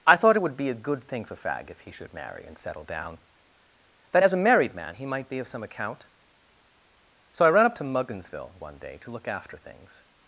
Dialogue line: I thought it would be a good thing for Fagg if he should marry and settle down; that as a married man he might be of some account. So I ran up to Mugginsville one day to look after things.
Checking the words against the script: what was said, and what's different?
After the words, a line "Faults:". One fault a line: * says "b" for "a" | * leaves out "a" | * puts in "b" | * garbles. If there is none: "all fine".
I thought it would be a good thing for Fagg if he should marry and settle down; that as a married man he might be of some account. So I ran up to Mugginsville one day to look after things.
Faults:
all fine